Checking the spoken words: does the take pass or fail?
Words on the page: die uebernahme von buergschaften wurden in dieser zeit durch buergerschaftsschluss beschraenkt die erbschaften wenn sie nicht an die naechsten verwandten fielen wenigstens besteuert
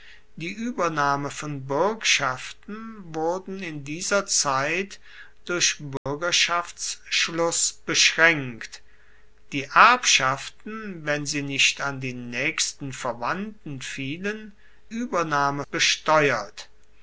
fail